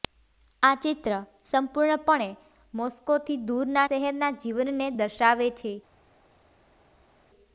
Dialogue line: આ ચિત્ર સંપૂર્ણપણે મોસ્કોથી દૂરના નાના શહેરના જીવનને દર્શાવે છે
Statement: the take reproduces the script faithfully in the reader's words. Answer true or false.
false